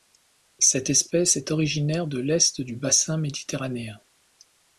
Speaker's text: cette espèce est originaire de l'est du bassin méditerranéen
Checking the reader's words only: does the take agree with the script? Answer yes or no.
yes